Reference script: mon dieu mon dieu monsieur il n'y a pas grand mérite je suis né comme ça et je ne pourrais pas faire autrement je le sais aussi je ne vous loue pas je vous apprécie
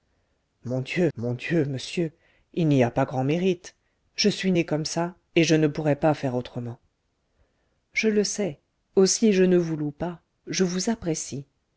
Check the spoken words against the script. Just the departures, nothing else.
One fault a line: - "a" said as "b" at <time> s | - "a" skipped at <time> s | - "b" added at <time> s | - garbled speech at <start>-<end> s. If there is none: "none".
none